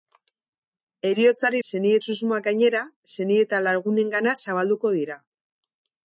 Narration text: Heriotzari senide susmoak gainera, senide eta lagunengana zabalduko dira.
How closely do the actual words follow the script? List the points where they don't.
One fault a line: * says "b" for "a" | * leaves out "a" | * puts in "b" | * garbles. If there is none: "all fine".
all fine